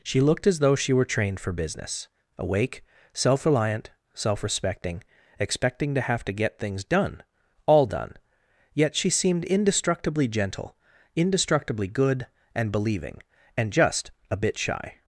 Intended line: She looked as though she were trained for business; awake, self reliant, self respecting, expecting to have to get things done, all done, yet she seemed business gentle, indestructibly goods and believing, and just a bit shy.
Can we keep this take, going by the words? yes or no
no